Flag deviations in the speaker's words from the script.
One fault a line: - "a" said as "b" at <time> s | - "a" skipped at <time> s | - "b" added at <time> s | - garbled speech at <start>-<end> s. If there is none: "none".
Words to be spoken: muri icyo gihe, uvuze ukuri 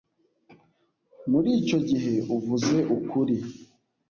none